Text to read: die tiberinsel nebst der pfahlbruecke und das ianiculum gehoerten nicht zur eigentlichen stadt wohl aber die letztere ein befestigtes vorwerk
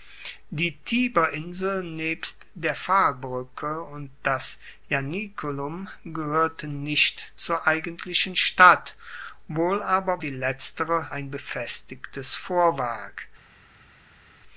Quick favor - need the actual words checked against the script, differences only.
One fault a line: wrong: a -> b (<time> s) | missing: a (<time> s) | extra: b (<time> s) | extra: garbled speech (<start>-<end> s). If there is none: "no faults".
no faults